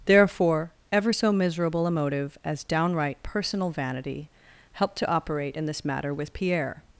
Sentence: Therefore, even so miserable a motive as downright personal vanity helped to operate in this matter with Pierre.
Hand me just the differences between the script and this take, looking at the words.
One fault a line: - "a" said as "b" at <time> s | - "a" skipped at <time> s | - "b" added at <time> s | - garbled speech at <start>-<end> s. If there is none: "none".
- "even" said as "ever" at 0.9 s